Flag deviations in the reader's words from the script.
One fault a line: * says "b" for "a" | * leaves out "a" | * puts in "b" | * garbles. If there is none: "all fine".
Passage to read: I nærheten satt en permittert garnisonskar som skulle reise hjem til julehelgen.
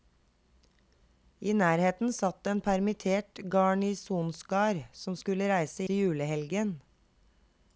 * leaves out "hjem"